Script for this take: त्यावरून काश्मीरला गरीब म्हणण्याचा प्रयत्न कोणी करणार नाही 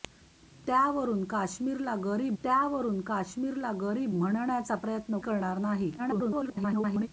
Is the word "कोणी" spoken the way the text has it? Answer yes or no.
no